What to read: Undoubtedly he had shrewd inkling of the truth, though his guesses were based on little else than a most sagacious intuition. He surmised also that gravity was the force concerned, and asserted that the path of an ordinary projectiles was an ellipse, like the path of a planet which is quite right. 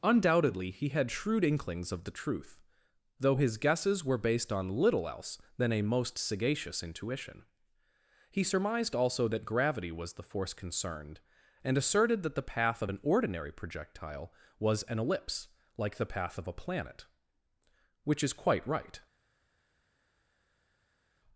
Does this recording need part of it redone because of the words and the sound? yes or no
yes